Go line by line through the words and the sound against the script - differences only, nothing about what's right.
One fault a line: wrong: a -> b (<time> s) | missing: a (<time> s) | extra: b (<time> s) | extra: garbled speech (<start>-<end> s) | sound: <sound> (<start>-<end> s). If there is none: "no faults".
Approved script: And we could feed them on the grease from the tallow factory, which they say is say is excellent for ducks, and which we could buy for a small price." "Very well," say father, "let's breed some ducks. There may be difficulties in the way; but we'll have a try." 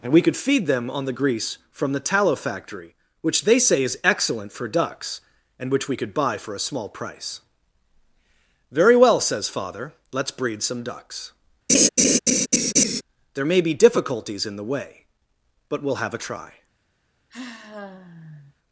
missing: say is (4.0 s)
wrong: say -> says (9.2 s)
sound: laugh (11.7-13.0 s)
sound: sigh (17.3-18.6 s)